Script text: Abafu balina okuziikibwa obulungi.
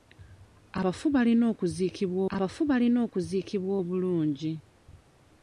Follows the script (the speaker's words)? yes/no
no